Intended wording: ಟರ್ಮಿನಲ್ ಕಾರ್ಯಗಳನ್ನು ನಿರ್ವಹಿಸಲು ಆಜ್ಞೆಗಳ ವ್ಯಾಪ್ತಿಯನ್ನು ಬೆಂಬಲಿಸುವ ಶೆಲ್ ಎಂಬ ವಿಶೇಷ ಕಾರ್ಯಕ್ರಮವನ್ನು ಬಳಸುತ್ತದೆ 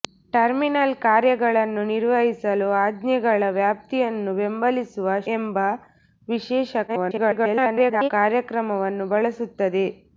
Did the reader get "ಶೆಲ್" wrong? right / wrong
wrong